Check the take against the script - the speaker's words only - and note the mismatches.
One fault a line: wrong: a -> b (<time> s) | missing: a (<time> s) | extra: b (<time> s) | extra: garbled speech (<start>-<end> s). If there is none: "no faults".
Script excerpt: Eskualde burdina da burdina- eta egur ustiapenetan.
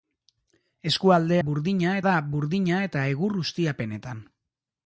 no faults